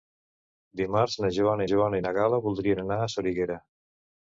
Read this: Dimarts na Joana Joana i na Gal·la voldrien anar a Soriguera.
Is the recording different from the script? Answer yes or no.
no